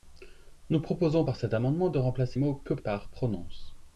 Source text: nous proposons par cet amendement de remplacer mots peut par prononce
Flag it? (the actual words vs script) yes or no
no